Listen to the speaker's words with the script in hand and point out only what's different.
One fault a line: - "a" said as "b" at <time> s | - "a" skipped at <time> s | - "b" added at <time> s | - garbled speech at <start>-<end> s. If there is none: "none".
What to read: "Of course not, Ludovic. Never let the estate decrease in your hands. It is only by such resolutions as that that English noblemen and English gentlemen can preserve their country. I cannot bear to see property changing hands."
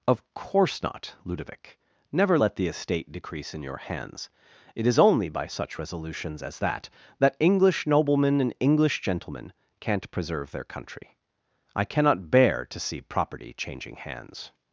- "can" said as "can't" at 9.8 s